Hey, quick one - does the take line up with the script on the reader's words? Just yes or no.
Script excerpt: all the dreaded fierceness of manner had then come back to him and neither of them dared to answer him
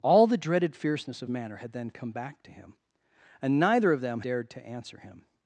yes